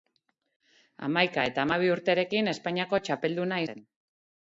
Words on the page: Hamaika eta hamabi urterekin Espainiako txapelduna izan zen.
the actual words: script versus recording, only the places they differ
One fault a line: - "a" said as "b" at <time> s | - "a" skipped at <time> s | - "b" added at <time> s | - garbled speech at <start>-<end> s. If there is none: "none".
- "izan" skipped at 3.6 s